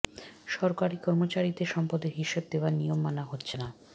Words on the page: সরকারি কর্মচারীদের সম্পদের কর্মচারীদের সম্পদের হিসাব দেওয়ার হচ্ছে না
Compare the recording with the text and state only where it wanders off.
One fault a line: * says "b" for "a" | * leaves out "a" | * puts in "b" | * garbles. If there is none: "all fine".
* says "হিসাব দেওয়ার নিয়ম মানা" for "কর্মচারীদের সম্পদের হিসাব দেওয়ার"